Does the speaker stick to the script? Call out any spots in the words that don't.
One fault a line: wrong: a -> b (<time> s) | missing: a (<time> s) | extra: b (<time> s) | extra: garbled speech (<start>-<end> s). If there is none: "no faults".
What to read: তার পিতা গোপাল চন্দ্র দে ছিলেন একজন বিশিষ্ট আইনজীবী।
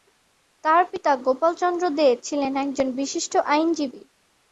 no faults